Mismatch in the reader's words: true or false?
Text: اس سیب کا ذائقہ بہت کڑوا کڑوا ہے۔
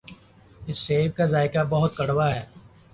true